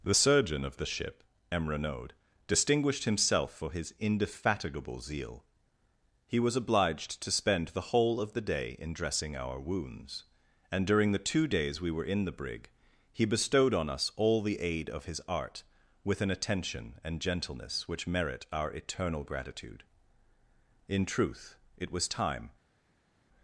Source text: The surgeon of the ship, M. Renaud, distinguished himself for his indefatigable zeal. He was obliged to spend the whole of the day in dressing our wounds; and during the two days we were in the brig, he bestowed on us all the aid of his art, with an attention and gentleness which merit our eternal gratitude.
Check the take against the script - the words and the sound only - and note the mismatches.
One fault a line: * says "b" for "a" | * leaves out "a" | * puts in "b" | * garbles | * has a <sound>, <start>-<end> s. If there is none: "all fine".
* puts in "In truth it was time"